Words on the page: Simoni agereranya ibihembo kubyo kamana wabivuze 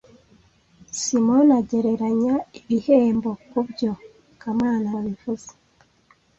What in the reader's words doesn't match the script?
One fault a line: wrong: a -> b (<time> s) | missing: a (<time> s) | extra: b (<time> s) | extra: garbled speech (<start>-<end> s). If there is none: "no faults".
no faults